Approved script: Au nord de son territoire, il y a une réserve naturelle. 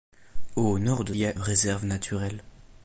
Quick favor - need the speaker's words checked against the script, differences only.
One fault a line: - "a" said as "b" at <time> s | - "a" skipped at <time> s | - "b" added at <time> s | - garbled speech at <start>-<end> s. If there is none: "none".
- "son territoire il" skipped at 1.1 s
- "une" skipped at 1.3 s